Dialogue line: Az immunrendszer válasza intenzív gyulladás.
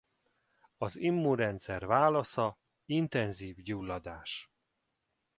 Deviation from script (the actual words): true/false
false